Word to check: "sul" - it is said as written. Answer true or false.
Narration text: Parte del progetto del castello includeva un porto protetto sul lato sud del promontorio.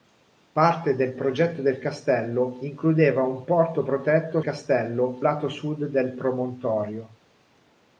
false